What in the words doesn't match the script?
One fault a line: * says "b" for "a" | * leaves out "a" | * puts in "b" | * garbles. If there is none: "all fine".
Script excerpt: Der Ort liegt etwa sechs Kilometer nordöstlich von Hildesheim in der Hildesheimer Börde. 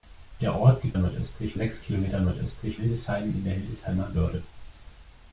* says "nordöstlich" for "etwa"
* leaves out "von"